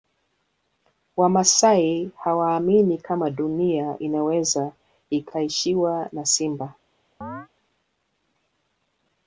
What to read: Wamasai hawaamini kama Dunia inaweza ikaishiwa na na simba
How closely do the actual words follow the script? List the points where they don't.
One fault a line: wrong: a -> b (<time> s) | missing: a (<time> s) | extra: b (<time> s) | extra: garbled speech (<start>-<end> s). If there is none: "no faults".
missing: na (6.3 s)